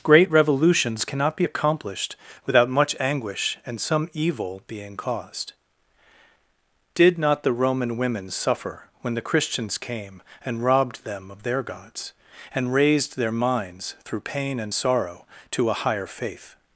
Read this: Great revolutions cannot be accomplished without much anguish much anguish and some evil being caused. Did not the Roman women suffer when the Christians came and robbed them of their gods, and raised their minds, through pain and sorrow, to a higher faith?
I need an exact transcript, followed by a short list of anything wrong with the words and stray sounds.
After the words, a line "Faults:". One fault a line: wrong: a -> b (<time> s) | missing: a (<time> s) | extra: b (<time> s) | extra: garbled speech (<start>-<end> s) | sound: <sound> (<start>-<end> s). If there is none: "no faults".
Great revolutions cannot be accomplished without much anguish and some evil being caused. Did not the Roman women suffer when the Christians came and robbed them of their gods, and raised their minds, through pain and sorrow, to a higher faith?
Faults:
missing: much anguish (3.6 s)